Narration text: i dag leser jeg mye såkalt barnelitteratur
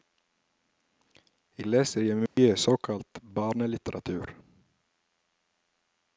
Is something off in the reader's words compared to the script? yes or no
yes